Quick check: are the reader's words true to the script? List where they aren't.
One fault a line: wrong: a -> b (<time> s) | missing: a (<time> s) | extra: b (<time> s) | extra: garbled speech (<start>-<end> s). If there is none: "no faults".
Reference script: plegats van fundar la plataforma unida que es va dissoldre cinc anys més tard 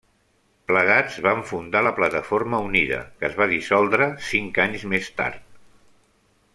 no faults